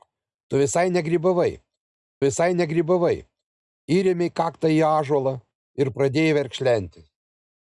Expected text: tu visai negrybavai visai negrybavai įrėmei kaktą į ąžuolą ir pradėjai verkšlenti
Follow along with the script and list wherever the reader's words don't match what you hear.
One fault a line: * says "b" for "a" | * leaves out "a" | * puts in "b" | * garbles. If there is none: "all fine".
all fine